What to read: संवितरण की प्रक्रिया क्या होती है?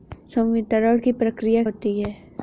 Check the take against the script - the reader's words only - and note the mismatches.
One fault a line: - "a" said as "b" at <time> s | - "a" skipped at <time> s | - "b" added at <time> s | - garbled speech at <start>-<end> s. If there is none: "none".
- "क्या" skipped at 1.6 s